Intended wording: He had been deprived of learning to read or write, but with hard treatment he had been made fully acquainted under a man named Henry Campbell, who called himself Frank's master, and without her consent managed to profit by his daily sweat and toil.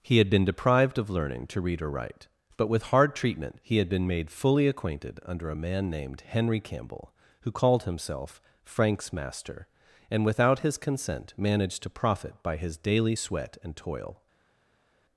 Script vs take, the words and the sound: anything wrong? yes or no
yes